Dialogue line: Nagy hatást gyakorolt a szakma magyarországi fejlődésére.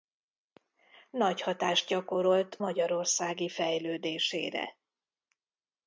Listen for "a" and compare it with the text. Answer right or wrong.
wrong